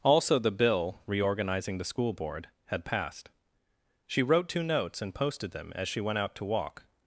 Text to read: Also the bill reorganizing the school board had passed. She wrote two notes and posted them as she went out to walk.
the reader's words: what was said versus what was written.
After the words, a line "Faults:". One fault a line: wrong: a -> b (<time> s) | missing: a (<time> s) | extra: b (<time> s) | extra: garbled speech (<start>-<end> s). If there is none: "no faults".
Also the bill reorganizing the school board had passed. She wrote two notes and posted them as she went out to walk.
Faults:
no faults